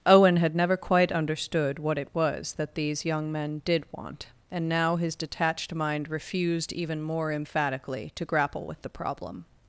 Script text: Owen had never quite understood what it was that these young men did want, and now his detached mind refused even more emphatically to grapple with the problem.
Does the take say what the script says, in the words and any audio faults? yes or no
yes